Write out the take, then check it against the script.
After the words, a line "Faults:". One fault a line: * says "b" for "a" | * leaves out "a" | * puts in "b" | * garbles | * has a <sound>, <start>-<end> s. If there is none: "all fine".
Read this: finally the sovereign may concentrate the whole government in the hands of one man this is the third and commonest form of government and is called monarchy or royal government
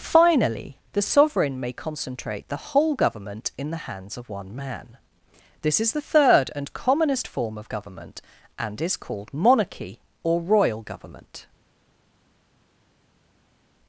finally the sovereign may concentrate the whole government in the hands of one man this is the third and commonest form of government and is called monarchy or royal government
Faults:
all fine